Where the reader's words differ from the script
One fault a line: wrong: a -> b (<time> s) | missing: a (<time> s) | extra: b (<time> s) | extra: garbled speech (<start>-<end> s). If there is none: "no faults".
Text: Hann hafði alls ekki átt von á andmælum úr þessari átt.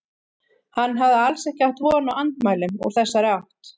no faults